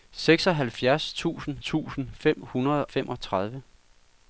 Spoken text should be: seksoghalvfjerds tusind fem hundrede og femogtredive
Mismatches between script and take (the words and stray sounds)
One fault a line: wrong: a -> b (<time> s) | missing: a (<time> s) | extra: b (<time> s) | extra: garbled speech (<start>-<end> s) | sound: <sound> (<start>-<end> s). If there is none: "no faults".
extra: tusind (1.6 s)
missing: og (2.9 s)